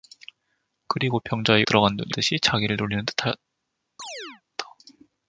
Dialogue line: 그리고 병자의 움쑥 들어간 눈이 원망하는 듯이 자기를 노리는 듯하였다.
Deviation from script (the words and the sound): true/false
true